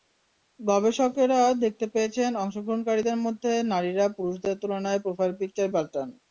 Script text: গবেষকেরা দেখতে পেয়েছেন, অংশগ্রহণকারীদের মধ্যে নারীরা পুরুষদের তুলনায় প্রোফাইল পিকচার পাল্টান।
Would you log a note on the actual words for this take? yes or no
no